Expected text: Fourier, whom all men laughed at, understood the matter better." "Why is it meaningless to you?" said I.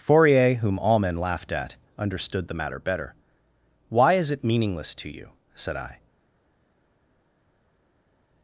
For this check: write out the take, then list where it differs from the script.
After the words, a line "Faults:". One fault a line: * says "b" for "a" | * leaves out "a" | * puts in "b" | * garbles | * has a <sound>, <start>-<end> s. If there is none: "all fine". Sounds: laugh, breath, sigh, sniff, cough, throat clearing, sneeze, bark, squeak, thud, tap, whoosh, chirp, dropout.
Fourier, whom all men laughed at, understood the matter better." "Why is it meaningless to you?" said I.
Faults:
all fine